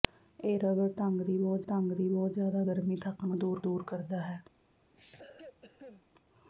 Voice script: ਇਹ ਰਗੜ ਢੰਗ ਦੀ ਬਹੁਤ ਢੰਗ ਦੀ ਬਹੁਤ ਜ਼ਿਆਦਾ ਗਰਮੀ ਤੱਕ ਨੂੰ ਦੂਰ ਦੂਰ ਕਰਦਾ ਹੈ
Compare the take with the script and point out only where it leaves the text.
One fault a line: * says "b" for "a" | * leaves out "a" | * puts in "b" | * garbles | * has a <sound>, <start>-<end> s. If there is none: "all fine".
* has a cough, 4.9-6.0 s